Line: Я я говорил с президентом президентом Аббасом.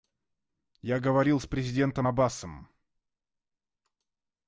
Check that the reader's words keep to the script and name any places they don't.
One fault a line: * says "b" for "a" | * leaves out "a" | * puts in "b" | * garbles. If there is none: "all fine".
* leaves out "я"
* leaves out "президентом"